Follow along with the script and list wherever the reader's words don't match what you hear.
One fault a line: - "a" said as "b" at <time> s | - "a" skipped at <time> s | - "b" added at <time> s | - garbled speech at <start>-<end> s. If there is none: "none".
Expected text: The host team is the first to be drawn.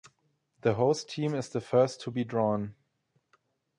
none